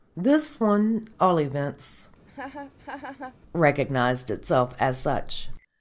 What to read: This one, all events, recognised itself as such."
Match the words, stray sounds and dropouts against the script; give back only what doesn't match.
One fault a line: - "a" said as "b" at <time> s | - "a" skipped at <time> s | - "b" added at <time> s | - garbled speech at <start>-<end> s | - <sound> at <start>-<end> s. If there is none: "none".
- laugh at 2.3-3.4 s